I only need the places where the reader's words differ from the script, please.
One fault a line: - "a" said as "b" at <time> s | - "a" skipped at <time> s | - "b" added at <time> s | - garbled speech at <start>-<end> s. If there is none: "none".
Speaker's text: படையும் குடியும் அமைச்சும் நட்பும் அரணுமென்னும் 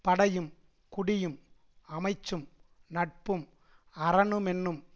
none